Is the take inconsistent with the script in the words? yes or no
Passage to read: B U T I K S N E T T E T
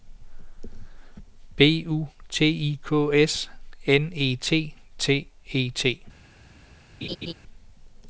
no